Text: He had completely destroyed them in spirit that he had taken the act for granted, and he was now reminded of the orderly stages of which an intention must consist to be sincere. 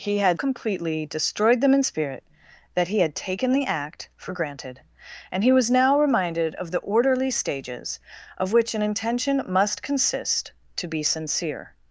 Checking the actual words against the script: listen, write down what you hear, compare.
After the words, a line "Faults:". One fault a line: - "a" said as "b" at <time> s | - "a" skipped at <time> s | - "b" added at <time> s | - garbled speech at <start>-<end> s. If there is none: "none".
He had completely destroyed them in spirit that he had taken the act for granted, and he was now reminded of the orderly stages of which an intention must consist to be sincere.
Faults:
none